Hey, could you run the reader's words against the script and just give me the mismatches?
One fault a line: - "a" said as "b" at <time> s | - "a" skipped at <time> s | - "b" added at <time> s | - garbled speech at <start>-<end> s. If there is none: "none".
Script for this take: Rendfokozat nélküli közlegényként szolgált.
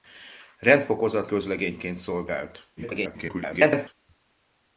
- "nélküli" skipped at 1.3 s
- garbled speech at 2.8-3.9 s